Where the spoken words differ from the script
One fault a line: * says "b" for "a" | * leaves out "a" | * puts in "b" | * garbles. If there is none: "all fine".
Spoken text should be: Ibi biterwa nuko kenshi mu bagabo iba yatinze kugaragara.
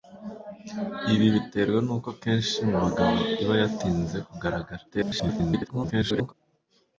* garbles